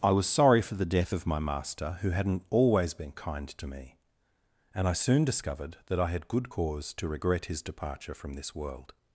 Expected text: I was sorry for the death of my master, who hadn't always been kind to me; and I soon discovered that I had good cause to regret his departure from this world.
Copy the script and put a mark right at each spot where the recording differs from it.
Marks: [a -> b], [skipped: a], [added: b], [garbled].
I was sorry for the death of my master, who hadn't always been kind to me; and I soon discovered that I had good cause to regret his departure from this world.